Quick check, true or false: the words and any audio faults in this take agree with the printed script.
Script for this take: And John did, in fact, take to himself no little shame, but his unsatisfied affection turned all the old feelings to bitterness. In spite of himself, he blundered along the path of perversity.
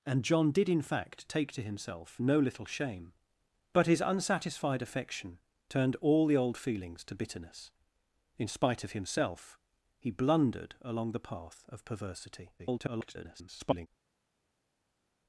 false